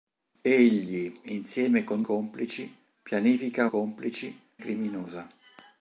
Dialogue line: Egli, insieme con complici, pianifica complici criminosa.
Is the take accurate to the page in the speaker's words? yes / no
yes